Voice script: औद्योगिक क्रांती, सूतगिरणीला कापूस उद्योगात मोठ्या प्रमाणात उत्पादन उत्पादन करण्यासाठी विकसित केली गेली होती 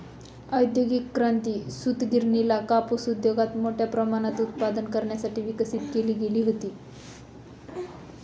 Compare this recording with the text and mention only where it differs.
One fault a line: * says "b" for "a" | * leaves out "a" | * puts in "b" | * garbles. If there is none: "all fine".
* leaves out "उत्पादन"